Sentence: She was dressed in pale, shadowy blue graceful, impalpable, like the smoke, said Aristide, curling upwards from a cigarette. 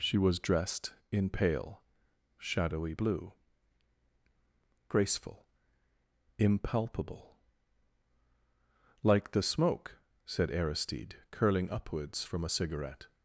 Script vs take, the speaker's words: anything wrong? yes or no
no